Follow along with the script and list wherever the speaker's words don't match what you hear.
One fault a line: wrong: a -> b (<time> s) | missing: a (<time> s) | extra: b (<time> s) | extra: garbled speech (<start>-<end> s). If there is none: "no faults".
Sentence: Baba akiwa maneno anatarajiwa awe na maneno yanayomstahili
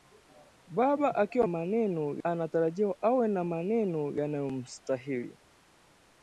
no faults